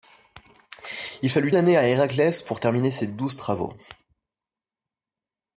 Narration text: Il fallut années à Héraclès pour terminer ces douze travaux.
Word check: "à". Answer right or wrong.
right